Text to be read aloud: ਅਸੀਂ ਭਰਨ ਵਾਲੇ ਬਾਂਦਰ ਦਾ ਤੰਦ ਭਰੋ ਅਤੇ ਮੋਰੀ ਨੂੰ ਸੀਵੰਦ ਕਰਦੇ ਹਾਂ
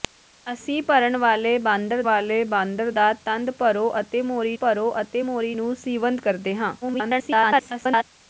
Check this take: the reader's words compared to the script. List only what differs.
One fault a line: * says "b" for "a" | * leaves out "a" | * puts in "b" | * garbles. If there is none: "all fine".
* puts in "ਵਾਲੇ ਬਾਂਦਰ"
* puts in "ਭਰੋ ਅਤੇ ਮੋਰੀ"
* garbles